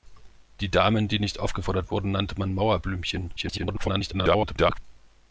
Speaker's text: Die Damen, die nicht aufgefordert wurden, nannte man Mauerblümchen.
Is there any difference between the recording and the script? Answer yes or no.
yes